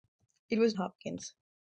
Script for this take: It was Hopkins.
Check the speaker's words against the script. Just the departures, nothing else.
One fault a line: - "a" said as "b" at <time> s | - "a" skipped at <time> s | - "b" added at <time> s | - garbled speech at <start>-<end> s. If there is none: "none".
none